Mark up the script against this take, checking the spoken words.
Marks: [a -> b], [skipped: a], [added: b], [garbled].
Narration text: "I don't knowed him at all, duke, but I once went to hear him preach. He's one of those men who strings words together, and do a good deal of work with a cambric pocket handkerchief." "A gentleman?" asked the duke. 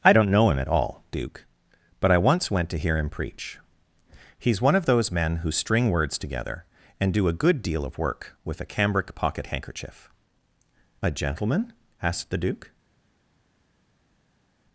"I don't [knowed -> know] him at all, duke, but I once went to hear him preach. He's one of those men who [strings -> string] words together, and do a good deal of work with a cambric pocket handkerchief." "A gentleman?" asked the duke.